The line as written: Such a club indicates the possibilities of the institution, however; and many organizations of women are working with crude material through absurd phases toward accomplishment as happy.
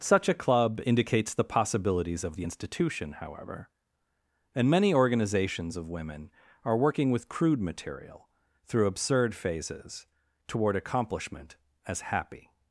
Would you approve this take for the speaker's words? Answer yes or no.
yes